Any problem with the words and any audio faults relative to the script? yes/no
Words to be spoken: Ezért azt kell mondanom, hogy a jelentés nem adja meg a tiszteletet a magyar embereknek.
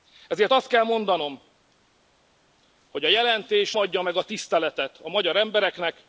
yes